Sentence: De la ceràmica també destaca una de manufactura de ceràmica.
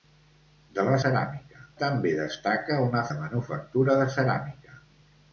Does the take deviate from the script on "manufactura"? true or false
false